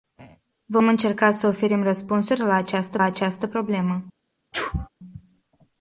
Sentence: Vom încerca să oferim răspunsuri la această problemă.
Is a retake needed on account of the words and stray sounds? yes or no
yes